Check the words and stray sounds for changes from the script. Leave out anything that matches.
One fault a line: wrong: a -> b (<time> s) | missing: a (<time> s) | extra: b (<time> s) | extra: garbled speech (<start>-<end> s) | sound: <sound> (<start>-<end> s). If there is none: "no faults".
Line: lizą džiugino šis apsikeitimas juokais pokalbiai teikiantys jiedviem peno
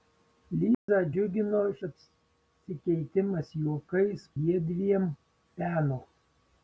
sound: dropout (0.7-0.9 s)
missing: šis (1.6 s)
missing: pokalbiai teikiantys (4.3 s)